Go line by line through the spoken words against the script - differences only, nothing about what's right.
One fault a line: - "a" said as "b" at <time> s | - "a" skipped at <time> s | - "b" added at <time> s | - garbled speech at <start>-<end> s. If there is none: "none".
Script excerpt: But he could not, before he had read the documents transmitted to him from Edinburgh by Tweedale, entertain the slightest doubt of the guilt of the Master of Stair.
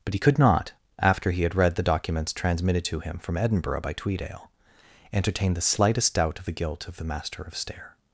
- "before" said as "after" at 1.0 s